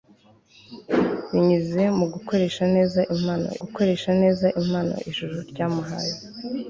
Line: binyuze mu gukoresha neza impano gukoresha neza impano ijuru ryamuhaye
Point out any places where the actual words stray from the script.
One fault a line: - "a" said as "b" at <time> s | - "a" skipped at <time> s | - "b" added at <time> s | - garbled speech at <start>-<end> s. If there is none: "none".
none